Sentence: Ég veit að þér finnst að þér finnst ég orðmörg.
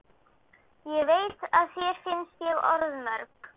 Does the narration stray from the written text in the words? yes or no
yes